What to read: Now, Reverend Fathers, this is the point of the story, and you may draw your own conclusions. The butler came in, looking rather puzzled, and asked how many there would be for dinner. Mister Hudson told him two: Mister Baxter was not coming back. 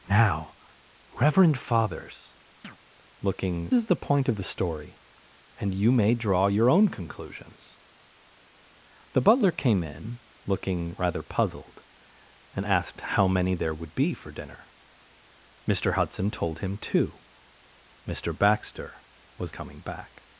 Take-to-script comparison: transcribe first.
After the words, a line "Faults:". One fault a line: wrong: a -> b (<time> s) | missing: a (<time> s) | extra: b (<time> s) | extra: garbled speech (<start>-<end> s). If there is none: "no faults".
Now, Reverend Fathers, looking is the point of the story, and you may draw your own conclusions. The butler came in, looking rather puzzled, and asked how many there would be for dinner. Mister Hudson told him two: Mister Baxter was coming back.
Faults:
wrong: this -> looking (3.2 s)
missing: not (19.5 s)